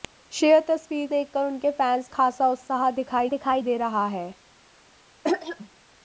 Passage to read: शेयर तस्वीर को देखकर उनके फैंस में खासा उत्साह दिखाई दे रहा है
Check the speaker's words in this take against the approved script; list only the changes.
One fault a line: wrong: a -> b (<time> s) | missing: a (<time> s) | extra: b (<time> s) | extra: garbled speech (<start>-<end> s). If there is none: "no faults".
missing: को (1.1 s)
missing: में (2.1 s)
extra: दिखाई (3.3 s)